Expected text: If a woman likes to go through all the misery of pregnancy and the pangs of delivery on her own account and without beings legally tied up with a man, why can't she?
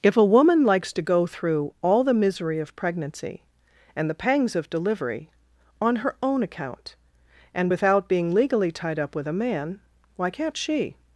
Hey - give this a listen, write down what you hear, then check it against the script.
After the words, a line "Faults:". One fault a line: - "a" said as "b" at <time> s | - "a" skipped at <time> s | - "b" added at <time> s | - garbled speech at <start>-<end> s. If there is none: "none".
If a woman likes to go through all the misery of pregnancy and the pangs of delivery on her own account and without being legally tied up with a man, why can't she?
Faults:
- "beings" said as "being" at 8.1 s